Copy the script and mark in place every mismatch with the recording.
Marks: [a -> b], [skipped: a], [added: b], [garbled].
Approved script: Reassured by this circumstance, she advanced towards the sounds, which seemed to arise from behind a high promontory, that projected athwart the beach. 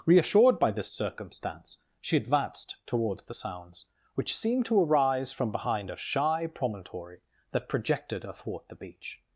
Reassured by this circumstance, she advanced towards the sounds, which seemed to arise from behind a [high -> shy] promontory, that projected athwart the beach.